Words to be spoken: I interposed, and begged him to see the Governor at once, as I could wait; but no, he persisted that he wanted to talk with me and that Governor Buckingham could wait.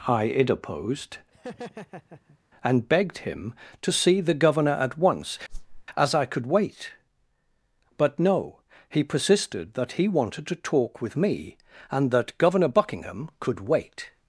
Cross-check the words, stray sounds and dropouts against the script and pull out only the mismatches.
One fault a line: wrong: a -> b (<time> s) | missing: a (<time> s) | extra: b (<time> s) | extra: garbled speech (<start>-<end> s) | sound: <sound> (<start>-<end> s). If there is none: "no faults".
sound: laugh (1.3-2.4 s)
sound: whoosh (5.5-5.9 s)